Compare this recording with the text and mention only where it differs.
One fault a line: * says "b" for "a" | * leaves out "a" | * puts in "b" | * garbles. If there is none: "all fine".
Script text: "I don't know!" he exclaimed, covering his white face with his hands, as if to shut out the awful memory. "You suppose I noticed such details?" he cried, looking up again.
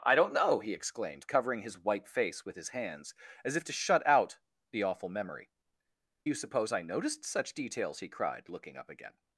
all fine